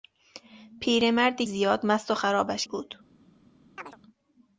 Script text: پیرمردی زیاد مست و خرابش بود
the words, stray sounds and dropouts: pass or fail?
fail